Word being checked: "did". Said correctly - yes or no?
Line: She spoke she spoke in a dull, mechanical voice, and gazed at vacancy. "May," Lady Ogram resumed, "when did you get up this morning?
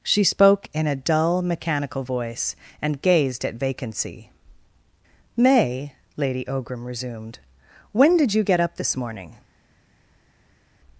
yes